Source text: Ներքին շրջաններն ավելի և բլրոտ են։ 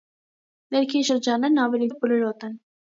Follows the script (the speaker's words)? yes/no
yes